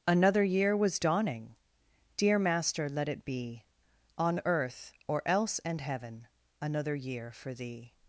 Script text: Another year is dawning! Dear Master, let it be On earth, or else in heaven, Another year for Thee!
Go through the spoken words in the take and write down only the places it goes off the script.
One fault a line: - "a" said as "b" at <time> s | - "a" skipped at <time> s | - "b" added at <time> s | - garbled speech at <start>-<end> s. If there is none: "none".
- "is" said as "was" at 0.8 s
- "in" said as "and" at 5.6 s